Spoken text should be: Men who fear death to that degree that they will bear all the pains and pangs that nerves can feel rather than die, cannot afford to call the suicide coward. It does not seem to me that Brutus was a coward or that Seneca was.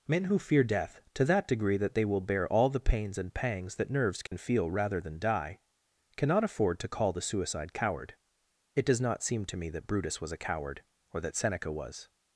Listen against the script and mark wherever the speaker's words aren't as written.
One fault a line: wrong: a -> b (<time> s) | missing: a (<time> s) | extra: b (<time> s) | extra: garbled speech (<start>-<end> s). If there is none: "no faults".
no faults